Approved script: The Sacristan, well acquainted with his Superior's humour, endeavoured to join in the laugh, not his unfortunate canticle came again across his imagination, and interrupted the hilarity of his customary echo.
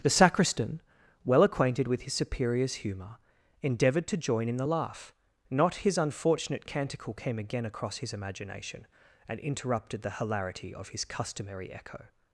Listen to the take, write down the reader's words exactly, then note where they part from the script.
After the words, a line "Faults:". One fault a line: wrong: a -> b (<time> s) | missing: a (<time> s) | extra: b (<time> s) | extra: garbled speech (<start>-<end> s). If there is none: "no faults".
The Sacristan, well acquainted with his Superior's humour, endeavoured to join in the laugh, not his unfortunate canticle came again across his imagination, and interrupted the hilarity of his customary echo.
Faults:
no faults